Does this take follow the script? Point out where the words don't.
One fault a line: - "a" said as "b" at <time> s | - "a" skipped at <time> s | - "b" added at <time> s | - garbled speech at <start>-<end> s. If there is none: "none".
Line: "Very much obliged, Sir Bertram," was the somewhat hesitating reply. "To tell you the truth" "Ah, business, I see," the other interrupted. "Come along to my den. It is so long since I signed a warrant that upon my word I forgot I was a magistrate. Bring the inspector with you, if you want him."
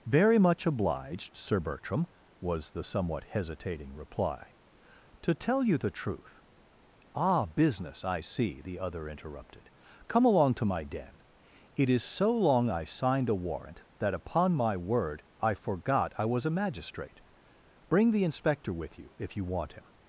- "since" skipped at 12.7 s